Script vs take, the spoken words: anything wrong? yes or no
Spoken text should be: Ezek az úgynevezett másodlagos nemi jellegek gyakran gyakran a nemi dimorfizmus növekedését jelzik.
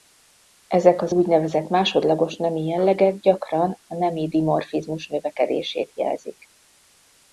yes